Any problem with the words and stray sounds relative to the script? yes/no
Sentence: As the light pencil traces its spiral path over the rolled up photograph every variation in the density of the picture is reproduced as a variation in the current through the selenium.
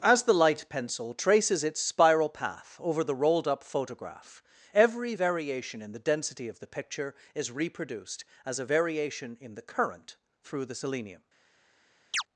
yes